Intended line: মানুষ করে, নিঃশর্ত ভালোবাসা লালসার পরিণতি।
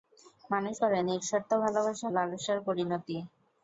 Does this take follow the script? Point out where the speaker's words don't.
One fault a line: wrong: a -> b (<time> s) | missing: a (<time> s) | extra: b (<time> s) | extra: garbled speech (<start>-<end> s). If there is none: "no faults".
no faults